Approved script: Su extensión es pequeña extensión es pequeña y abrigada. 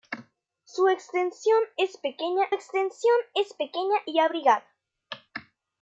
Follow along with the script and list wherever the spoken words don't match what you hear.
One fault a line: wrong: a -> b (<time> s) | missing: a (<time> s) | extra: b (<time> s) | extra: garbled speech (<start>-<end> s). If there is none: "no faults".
no faults